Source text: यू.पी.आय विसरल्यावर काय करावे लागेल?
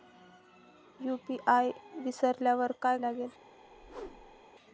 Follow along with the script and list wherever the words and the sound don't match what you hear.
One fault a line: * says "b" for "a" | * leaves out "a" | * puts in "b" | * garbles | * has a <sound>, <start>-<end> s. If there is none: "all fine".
* leaves out "करावे"
* has a whoosh, 3.6-4.5 s